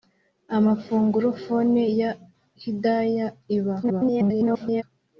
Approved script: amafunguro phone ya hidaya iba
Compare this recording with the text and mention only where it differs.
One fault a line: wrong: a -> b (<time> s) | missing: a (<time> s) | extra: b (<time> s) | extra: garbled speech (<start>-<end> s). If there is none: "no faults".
extra: garbled speech (3.8-4.8 s)